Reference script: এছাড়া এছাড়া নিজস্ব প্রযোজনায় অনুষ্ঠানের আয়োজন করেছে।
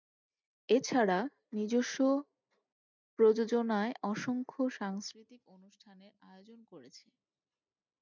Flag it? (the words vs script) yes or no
yes